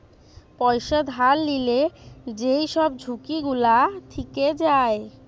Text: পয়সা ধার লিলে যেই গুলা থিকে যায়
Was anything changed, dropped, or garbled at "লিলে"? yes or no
no